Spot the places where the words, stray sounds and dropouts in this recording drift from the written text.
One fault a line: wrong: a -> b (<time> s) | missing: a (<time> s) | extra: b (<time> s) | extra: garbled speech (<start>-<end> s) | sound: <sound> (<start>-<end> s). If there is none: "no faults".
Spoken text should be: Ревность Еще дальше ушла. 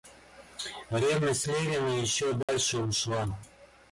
extra: Левина (1.4 s)
sound: dropout (2.4-2.5 s)